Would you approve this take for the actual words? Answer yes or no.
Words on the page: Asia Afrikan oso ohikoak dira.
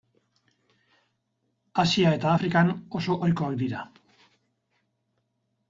no